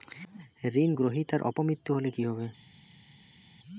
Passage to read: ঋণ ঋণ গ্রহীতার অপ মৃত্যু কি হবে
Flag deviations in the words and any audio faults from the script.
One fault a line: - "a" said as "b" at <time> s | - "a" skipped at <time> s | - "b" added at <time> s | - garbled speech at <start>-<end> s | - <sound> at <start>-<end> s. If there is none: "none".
- "ঋণ" skipped at 0.9 s
- "হলে" added at 1.9 s